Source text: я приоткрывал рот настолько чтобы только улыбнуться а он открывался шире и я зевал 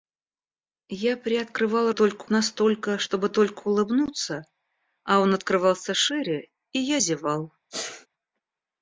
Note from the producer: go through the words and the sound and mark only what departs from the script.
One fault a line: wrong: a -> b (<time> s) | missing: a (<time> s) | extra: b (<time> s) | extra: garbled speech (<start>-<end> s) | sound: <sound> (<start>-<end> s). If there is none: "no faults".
wrong: рот -> только (1.9 s)
sound: sneeze (7.7-8.1 s)